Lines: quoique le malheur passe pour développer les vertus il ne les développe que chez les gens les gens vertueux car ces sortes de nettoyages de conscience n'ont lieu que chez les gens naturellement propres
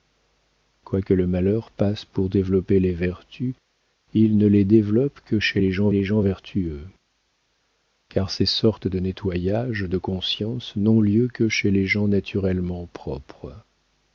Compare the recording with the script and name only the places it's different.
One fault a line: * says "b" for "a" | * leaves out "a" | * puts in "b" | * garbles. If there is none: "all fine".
all fine